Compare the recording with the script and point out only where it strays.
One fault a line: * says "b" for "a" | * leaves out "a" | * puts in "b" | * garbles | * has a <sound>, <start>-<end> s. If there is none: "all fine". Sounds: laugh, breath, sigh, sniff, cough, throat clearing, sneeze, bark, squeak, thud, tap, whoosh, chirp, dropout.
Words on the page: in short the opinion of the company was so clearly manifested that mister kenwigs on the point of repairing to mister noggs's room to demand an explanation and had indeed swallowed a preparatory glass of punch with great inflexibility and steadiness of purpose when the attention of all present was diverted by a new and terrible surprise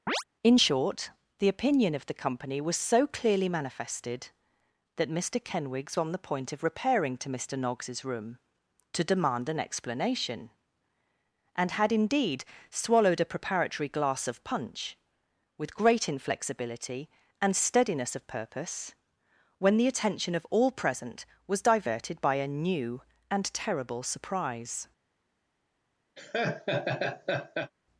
* has a chirp, 0.1-0.2 s
* has a laugh, 26.2-27.7 s